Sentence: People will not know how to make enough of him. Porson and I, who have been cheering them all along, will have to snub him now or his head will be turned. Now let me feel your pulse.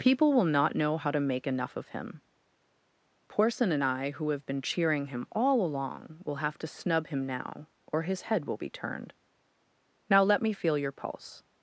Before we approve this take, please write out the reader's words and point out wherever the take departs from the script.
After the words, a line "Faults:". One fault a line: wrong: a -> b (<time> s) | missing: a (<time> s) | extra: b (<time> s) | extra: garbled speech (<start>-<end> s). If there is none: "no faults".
People will not know how to make enough of him. Porson and I, who have been cheering him all along, will have to snub him now or his head will be turned. Now let me feel your pulse.
Faults:
wrong: them -> him (5.1 s)